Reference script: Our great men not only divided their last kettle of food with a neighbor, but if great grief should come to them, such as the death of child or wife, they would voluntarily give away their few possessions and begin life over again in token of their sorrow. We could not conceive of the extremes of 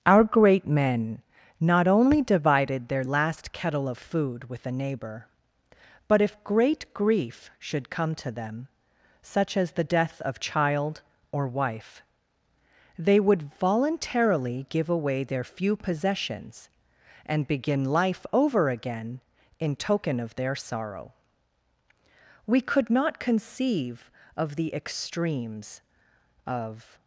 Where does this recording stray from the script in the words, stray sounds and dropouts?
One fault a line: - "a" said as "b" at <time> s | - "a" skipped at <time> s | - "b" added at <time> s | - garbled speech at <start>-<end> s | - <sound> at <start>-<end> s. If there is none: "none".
none